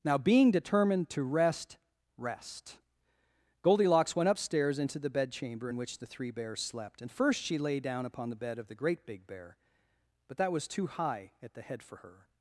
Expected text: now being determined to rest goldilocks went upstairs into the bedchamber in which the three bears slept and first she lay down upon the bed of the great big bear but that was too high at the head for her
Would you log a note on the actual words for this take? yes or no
yes